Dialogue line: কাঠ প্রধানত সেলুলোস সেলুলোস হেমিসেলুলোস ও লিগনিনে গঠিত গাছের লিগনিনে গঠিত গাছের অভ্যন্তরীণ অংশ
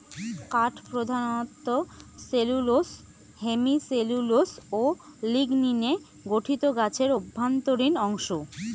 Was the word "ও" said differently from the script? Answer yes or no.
no